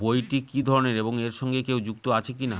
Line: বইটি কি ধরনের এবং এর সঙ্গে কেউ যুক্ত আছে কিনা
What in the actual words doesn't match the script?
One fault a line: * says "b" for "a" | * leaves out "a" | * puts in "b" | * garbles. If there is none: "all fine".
all fine